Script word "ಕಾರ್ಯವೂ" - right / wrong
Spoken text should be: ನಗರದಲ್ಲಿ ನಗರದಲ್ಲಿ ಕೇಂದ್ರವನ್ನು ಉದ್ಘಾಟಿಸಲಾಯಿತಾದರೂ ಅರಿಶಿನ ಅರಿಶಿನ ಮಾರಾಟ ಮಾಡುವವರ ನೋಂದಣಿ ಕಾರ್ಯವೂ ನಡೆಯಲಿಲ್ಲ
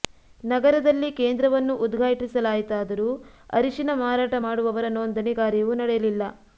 right